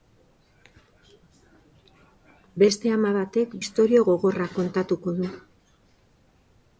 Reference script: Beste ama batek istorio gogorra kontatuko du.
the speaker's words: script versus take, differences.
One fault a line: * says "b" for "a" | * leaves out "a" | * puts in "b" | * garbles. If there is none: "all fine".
all fine